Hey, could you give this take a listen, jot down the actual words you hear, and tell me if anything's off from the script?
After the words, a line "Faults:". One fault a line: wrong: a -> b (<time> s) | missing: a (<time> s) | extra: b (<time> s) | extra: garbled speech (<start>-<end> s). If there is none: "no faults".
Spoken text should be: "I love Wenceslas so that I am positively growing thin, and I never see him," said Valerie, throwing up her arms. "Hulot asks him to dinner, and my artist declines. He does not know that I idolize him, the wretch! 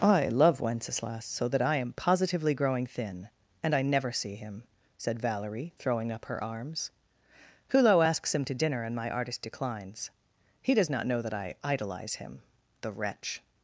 "I love Wenceslas so that I am positively growing thin, and I never see him," said Valerie, throwing up her arms. "Hulot asks him to dinner, and my artist declines. He does not know that I idolize him, the wretch!
Faults:
no faults